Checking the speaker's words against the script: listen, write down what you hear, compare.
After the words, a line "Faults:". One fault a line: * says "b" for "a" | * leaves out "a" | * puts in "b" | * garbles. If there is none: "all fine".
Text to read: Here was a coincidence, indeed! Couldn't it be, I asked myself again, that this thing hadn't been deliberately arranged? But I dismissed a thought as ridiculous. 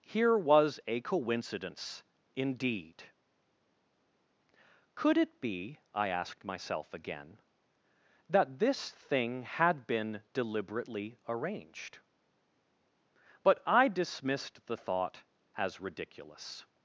Here was a coincidence, indeed! Could it be, I asked myself again, that this thing had been deliberately arranged? But I dismissed the thought as ridiculous.
Faults:
* says "Could" for "Couldn't"
* says "had" for "hadn't"
* says "the" for "a"